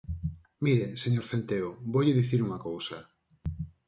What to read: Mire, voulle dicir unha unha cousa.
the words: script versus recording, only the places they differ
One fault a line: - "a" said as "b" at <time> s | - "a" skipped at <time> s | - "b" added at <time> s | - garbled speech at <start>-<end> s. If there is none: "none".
- "señor Centeo" added at 1.0 s
- "unha" skipped at 2.6 s